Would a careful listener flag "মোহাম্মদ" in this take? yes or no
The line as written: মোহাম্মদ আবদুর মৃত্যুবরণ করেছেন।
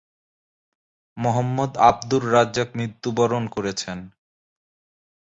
no